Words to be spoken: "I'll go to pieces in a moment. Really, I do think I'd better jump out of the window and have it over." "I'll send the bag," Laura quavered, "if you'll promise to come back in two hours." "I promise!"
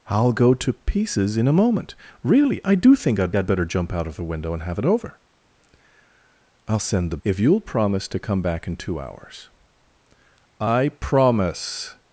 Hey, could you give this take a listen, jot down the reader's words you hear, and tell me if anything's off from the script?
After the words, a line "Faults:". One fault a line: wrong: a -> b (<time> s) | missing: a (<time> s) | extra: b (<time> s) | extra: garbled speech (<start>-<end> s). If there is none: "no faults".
"I'll go to pieces in a moment. Really, I do think I'd I'd better jump out of the window and have it over." "I'll send the "if you'll promise to come back in two hours." "I promise!"
Faults:
extra: I'd (3.3 s)
missing: bag Laura quavered (7.2 s)